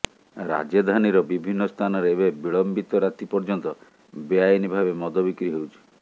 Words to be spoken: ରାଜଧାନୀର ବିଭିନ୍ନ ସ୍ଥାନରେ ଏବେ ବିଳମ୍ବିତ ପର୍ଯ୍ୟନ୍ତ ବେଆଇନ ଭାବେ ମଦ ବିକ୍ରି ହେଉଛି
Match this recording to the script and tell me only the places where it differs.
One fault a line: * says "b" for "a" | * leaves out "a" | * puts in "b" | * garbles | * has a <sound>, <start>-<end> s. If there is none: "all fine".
* puts in "ରାତି"